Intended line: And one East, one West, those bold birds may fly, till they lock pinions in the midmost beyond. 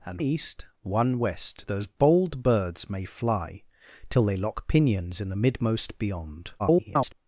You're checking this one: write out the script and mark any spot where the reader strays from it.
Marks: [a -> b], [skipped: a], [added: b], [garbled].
And [skipped: one] East, one West, those bold birds may fly, till they lock pinions in the midmost beyond. [garbled]